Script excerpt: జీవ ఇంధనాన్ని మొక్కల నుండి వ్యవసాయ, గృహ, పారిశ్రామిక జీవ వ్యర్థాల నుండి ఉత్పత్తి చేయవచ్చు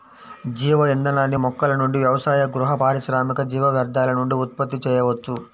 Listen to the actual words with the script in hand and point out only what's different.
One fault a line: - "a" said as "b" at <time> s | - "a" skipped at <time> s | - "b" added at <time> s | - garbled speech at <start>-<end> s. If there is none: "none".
none